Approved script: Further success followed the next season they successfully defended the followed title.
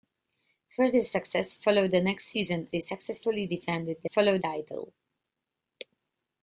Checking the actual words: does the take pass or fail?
pass